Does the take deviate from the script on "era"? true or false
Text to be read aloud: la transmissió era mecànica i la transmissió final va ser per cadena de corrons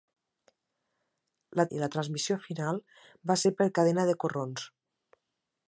true